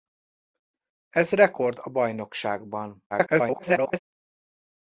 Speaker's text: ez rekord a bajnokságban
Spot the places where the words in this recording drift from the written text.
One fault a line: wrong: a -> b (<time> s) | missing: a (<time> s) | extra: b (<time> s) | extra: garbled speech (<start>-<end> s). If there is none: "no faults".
extra: garbled speech (3.1-4.0 s)